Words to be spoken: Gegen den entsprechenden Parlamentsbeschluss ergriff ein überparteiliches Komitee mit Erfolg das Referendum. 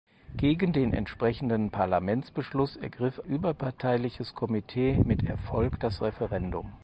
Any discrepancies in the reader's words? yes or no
yes